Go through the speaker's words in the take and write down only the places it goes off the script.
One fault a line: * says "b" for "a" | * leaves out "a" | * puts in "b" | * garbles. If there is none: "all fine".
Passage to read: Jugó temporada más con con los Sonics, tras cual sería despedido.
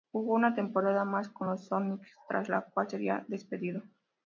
* puts in "una"
* leaves out "con"
* puts in "la"